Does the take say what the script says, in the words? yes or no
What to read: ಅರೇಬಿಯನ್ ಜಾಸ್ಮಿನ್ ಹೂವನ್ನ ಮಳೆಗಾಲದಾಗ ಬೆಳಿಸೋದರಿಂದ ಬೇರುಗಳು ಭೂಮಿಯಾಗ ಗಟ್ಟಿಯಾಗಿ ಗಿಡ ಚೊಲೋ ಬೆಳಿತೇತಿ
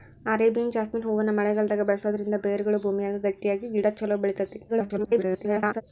no